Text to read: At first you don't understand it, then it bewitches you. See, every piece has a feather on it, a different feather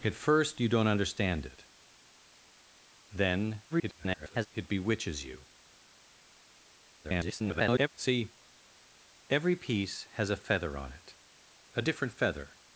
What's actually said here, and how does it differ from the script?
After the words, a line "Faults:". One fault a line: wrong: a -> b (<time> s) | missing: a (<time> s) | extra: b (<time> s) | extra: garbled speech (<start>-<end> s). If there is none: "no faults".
At first you don't understand it, then [garbled] it bewitches you. [garbled] See, every piece has a feather on it, a different feather
Faults:
extra: garbled speech (3.7-4.5 s)
extra: garbled speech (7.0-7.9 s)